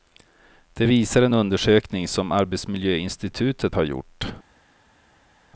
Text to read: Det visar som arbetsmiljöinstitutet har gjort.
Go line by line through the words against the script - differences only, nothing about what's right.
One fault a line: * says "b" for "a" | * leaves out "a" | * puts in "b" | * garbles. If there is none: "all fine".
* puts in "en undersökning"